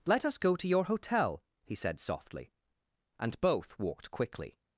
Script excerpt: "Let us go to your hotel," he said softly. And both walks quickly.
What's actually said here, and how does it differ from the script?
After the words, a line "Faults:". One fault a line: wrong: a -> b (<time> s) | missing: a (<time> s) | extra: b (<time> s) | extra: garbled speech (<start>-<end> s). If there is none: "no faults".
"Let us go to your hotel," he said softly. And both walked quickly.
Faults:
wrong: walks -> walked (3.8 s)